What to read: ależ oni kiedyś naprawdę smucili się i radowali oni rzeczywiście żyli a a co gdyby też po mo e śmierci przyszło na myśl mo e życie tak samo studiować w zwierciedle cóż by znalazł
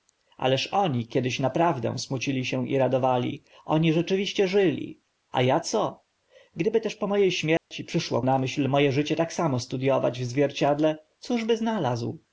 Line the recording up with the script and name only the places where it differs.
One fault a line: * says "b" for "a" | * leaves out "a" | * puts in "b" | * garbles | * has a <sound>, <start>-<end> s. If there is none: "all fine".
* has a dropout, 7.6-7.7 s